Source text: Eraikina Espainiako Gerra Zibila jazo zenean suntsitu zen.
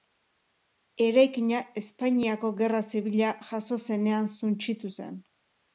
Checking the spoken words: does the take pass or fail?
pass